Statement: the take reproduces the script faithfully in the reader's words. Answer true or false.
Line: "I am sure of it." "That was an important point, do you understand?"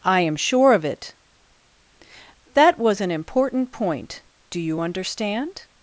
true